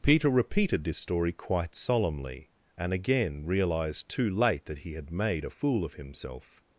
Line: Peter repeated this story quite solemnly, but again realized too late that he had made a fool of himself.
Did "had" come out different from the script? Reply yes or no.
no